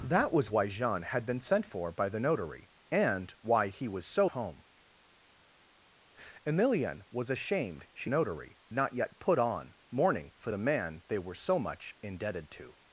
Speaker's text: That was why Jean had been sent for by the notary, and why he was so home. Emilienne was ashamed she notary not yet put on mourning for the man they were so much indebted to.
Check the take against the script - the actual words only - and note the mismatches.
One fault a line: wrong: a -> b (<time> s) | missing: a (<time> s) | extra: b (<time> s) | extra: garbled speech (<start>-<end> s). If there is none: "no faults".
no faults